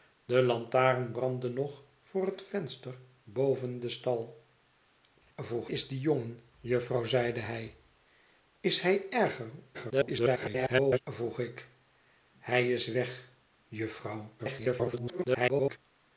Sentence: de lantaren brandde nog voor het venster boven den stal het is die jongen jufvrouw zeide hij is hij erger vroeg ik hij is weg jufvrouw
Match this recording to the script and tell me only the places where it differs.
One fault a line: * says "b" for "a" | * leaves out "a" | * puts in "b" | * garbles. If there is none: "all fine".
* says "vroeg" for "het"
* garbles
* garbles